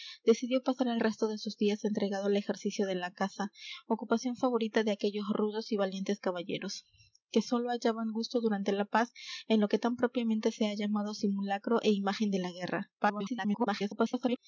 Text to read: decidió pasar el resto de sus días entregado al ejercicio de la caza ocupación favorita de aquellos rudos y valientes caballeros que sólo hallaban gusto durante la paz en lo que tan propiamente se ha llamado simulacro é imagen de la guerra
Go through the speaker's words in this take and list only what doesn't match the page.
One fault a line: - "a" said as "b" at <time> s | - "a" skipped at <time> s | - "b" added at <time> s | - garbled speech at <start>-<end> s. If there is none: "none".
- garbled speech at 13.0-14.4 s